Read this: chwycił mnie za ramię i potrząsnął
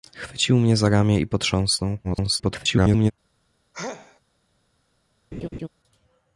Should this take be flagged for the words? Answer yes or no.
yes